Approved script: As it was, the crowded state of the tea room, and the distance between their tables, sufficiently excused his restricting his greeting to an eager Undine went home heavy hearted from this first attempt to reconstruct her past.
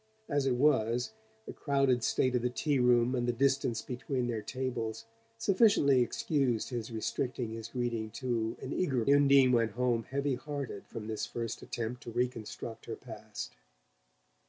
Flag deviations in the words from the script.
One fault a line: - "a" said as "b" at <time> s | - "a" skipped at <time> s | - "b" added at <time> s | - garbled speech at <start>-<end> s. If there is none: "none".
none